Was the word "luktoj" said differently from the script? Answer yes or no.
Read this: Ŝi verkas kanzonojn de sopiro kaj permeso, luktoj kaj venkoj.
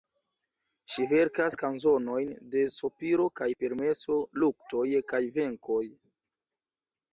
no